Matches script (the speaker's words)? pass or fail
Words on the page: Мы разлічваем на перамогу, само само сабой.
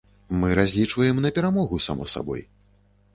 fail